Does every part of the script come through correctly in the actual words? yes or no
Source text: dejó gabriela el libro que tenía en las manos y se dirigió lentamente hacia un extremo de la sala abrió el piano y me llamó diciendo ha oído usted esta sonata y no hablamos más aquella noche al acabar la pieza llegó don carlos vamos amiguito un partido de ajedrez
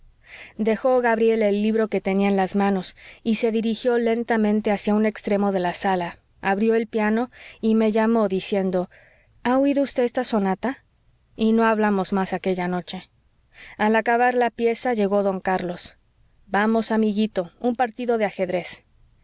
yes